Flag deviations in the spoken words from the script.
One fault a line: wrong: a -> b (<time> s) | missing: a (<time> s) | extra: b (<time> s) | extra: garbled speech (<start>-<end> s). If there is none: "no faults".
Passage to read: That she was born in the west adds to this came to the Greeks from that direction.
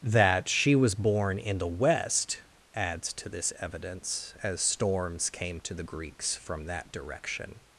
extra: evidence as storms (3.6 s)